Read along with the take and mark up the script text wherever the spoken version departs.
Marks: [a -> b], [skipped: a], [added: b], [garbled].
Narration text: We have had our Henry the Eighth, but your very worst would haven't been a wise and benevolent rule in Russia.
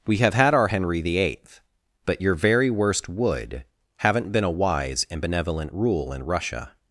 We have had our Henry the Eighth, but your very worst would haven't been a wise and benevolent rule in Russia.